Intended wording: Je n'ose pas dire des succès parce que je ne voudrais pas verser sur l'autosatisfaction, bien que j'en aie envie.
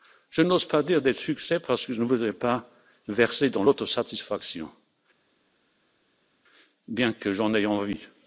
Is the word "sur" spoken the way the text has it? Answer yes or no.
no